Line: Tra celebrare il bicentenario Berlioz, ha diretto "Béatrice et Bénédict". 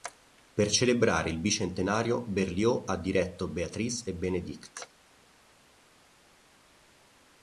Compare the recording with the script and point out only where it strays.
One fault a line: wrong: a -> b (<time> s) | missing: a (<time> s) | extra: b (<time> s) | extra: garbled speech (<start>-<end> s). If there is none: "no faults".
wrong: Tra -> Per (0.6 s)